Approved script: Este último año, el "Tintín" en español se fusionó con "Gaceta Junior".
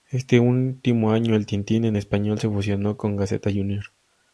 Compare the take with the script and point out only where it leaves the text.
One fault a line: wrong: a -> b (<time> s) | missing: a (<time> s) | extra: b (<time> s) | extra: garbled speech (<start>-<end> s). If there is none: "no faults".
no faults